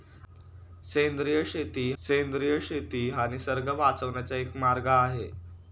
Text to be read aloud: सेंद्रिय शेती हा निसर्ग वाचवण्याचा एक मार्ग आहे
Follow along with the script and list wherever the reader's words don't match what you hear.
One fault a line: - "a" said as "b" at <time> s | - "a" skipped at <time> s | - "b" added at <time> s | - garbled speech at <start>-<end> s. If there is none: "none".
- "सेंद्रिय शेती" added at 2.0 s